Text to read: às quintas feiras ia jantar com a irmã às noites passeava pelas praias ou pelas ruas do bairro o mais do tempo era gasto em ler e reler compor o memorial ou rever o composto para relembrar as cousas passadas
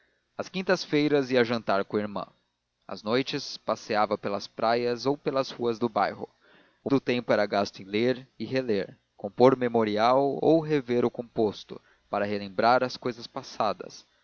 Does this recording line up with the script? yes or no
no